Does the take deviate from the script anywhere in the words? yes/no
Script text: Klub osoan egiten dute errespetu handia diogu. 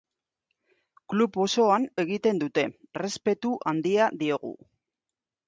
no